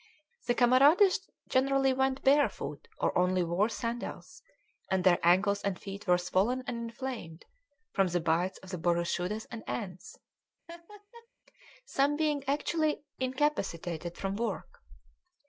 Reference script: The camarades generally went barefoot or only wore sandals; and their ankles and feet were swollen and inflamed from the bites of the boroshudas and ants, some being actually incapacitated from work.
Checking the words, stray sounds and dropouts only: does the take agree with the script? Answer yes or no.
no